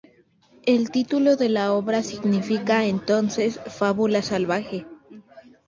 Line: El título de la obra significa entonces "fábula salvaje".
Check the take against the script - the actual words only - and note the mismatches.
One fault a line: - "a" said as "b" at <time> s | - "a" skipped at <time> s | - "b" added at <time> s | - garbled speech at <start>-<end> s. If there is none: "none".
none